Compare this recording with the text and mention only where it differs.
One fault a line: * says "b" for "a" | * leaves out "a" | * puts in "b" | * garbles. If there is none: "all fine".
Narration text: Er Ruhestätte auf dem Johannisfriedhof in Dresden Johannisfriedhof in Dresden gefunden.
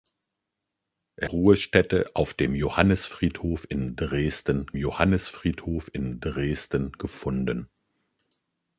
all fine